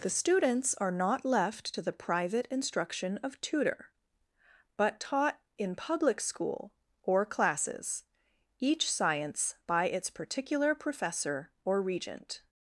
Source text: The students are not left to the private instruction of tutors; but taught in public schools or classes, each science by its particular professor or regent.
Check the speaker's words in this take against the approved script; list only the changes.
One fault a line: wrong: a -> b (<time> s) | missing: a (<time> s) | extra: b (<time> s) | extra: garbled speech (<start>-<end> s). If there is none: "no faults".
wrong: tutors -> tutor (3.4 s)
wrong: schools -> school (6.2 s)